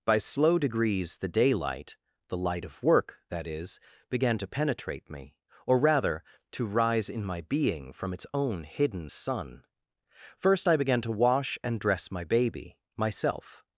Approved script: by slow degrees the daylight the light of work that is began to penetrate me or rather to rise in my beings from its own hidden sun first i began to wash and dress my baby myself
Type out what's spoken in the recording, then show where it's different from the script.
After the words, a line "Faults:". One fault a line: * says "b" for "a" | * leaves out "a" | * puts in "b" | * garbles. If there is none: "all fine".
by slow degrees the daylight the light of work that is began to penetrate me or rather to rise in my being from its own hidden sun first i began to wash and dress my baby myself
Faults:
* says "being" for "beings"